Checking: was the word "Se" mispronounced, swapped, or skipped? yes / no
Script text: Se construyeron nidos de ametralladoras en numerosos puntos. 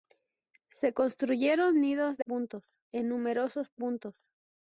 no